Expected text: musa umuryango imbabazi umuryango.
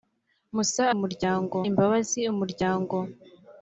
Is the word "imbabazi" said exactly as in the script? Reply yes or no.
yes